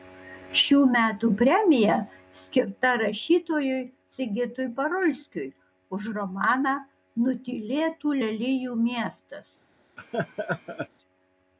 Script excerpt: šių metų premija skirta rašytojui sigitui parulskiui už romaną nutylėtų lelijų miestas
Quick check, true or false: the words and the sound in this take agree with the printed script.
false